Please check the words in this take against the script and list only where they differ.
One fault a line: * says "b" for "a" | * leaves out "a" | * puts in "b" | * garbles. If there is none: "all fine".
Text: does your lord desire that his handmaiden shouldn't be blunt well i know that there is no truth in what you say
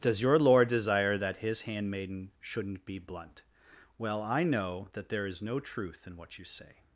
all fine